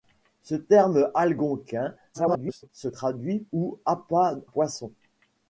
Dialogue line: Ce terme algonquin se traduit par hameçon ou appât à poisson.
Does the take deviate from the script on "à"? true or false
true